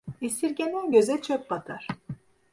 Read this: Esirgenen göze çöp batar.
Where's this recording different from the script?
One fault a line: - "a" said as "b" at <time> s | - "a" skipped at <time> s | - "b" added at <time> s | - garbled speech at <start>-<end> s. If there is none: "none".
none